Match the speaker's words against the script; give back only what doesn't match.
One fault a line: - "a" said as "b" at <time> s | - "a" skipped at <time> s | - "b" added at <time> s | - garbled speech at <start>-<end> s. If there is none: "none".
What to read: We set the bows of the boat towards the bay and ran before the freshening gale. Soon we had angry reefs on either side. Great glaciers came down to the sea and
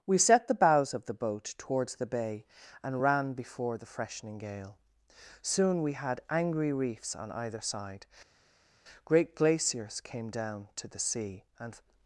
none